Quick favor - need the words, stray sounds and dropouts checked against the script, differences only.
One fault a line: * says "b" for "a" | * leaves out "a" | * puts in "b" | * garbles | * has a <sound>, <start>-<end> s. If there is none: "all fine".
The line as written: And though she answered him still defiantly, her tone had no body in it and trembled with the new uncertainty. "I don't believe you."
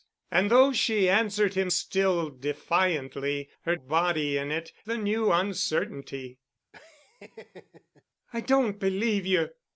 * leaves out "tone had no"
* leaves out "and trembled with"
* has a laugh, 6.7-8.0 s